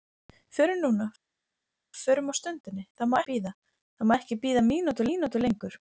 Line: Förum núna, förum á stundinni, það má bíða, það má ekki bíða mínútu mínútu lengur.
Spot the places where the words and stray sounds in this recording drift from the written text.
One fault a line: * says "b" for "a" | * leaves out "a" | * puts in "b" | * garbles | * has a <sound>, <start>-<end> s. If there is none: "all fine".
all fine